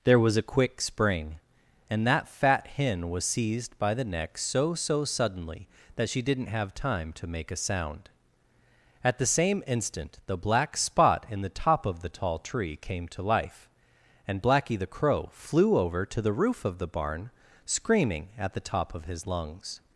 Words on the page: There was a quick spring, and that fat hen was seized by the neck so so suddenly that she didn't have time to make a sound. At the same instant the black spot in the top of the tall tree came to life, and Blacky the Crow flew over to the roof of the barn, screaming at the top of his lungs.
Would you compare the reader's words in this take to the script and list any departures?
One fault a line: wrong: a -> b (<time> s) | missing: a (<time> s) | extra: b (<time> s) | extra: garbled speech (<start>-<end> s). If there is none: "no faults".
no faults